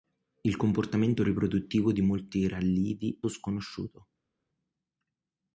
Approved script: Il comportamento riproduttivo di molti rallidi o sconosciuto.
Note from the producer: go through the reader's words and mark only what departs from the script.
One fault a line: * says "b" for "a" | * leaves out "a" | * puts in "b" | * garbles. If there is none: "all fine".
all fine